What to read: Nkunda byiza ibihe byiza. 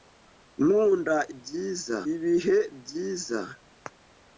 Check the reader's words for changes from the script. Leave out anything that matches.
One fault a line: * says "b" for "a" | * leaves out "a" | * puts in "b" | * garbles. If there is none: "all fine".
all fine